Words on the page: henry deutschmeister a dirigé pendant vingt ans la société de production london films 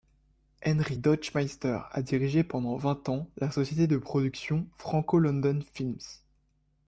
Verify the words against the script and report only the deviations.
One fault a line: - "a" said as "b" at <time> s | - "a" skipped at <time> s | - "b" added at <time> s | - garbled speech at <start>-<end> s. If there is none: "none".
- "franco" added at 4.7 s